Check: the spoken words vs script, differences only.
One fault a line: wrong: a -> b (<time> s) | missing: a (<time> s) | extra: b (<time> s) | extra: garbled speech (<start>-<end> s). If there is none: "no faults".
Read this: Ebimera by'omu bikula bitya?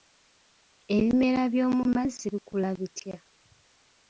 extra: mazzi (1.9 s)